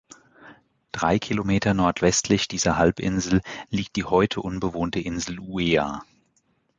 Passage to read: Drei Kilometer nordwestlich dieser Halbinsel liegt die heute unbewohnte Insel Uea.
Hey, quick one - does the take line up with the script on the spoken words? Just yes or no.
yes